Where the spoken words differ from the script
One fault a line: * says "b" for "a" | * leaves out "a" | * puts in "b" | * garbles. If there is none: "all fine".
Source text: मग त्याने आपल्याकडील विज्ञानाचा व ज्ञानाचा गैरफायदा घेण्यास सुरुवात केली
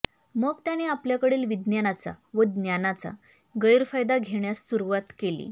all fine